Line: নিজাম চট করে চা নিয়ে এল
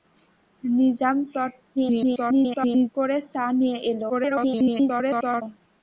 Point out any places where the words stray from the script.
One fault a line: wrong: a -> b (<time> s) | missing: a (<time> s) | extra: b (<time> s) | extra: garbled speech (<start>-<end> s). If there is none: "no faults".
extra: garbled speech (1.8-2.9 s)
extra: garbled speech (4.1-5.4 s)